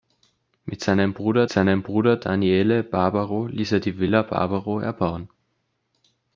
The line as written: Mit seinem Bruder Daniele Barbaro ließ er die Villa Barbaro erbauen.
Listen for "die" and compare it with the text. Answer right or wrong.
right